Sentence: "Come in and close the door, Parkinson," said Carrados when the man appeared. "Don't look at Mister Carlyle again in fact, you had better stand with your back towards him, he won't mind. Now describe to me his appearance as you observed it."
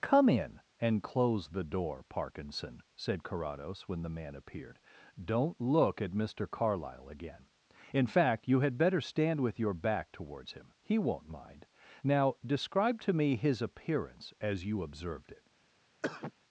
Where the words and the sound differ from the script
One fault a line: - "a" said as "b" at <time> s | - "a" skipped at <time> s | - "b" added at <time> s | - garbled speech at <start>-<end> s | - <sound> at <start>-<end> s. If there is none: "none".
- cough at 16.0-16.3 s